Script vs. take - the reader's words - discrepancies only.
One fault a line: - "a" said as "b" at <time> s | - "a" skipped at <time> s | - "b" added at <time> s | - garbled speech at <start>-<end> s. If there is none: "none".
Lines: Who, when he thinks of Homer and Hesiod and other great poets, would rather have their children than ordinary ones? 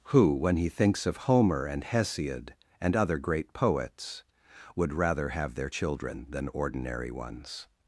none